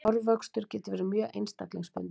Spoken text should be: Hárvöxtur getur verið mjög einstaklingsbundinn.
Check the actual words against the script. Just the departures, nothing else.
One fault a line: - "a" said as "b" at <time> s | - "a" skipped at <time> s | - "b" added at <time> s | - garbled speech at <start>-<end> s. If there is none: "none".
none